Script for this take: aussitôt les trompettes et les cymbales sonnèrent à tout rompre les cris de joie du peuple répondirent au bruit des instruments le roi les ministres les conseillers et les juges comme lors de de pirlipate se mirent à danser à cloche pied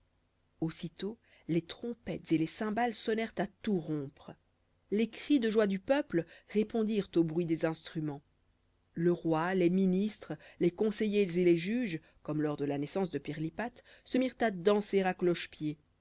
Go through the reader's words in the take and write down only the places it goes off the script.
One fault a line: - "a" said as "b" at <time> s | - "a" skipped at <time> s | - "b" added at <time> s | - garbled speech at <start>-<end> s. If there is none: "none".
- "la naissance" added at 12.6 s